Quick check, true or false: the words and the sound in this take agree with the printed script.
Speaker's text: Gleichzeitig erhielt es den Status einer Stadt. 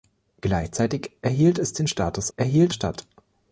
false